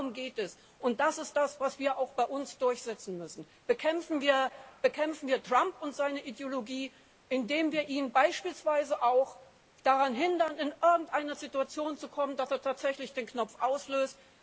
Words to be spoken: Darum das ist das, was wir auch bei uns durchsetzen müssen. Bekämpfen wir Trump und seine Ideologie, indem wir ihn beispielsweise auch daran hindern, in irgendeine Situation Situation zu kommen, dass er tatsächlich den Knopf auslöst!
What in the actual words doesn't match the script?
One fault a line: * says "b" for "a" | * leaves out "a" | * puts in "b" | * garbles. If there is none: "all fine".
* puts in "geht es und"
* leaves out "Situation"